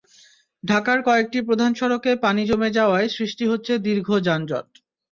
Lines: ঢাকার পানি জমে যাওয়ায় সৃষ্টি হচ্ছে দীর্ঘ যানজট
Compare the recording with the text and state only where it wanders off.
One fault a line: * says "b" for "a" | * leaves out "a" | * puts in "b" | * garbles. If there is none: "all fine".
* puts in "কয়েকটি প্রধান সড়কে"